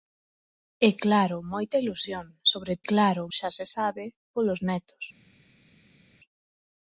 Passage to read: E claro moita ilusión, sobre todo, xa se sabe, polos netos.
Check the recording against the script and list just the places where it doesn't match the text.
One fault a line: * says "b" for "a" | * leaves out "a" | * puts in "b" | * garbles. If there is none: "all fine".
* says "claro" for "todo"